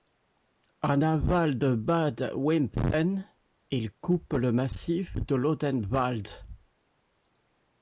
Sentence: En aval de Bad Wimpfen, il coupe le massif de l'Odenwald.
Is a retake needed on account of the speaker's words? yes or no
no